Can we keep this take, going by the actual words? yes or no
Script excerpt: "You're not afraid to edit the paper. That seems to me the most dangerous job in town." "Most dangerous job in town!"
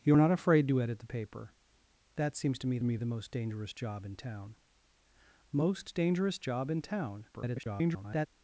no